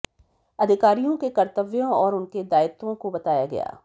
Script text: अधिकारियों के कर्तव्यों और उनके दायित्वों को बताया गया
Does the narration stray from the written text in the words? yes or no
no